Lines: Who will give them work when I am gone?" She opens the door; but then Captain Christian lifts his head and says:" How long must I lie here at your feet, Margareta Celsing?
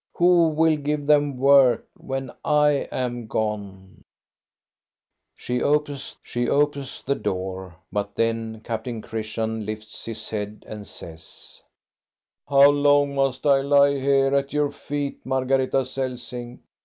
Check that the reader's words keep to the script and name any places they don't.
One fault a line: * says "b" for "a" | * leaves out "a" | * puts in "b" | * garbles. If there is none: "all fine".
* puts in "she opens"